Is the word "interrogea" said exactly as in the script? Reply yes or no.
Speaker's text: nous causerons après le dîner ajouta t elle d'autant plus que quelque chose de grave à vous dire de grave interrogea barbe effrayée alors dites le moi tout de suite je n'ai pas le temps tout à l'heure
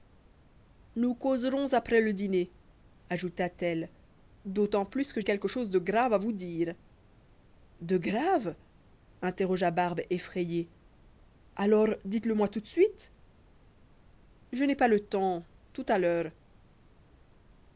yes